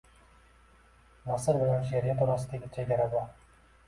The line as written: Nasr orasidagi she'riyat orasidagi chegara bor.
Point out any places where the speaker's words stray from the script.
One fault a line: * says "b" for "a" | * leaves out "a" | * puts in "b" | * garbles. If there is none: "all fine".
* says "bilan" for "orasidagi"